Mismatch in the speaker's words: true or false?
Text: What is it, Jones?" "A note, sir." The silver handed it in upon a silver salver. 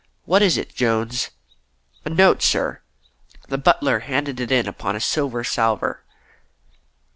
true